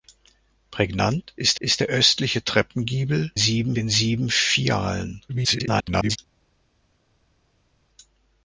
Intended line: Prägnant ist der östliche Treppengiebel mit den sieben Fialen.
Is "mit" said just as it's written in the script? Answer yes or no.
no